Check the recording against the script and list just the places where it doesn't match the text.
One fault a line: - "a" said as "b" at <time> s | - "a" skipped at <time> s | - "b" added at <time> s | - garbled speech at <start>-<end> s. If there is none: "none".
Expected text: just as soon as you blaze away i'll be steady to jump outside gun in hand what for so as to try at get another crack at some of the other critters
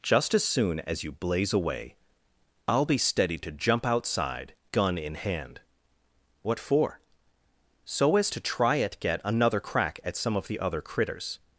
none